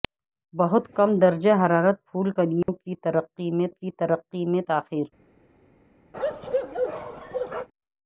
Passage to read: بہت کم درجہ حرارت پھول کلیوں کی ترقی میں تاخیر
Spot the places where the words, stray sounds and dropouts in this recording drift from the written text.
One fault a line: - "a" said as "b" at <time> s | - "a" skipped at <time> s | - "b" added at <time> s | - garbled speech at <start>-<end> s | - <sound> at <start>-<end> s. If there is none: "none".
- dropout at 2.6-2.7 s
- "کی ترقی میں" added at 3.7 s
- bark at 6.1-7.7 s